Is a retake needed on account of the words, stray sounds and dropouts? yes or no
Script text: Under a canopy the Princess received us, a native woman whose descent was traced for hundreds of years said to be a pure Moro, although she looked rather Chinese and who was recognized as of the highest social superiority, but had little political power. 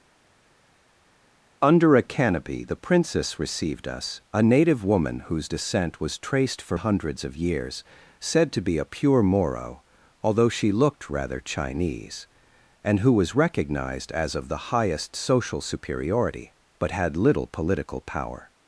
no